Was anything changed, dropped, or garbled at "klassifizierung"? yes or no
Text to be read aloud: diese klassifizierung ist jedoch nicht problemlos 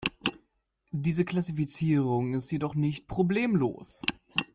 no